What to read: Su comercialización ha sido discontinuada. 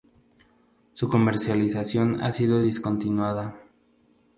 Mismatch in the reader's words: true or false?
false